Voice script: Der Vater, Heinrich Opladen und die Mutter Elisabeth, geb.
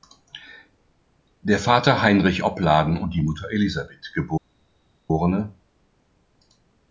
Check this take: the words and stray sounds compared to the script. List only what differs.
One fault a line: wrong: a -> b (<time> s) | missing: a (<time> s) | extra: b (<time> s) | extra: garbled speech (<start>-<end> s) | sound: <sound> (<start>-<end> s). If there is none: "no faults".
no faults